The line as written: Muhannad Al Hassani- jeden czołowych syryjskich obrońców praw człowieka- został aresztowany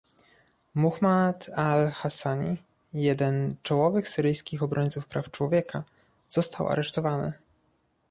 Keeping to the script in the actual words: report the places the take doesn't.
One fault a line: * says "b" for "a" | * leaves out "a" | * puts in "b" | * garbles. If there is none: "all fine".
all fine